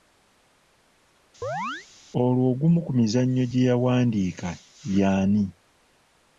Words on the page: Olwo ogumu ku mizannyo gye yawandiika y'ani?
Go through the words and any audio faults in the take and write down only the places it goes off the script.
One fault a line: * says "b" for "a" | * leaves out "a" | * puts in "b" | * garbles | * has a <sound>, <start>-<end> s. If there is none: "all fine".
* has a chirp, 1.4-1.9 s